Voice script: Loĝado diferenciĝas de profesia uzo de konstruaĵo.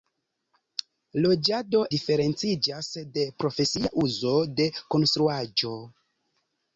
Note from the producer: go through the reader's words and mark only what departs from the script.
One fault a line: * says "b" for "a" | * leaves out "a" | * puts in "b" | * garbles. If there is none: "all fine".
all fine